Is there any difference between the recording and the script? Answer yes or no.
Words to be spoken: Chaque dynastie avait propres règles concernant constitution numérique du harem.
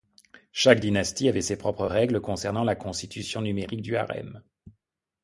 yes